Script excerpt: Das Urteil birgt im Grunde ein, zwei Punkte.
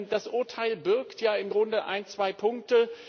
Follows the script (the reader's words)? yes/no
no